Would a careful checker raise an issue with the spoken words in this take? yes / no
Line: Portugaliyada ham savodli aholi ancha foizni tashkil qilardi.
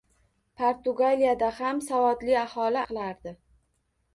yes